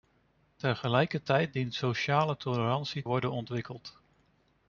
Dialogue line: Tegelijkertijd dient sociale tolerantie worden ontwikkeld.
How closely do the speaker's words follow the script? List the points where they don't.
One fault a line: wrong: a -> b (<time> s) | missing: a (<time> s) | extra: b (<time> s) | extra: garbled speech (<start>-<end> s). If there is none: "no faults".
no faults